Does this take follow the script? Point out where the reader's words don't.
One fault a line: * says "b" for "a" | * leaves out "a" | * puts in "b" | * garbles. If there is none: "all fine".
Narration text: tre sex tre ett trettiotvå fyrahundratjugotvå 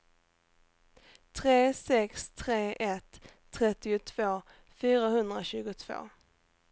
all fine